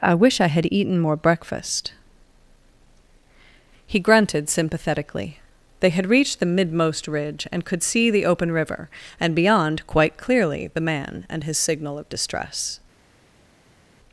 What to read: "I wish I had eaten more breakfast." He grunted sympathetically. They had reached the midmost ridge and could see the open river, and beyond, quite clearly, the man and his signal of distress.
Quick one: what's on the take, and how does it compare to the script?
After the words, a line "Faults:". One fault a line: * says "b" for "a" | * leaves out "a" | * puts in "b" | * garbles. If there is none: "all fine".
"I wish I had eaten more breakfast." He grunted sympathetically. They had reached the midmost ridge and could see the open river, and beyond, quite clearly, the man and his signal of distress.
Faults:
all fine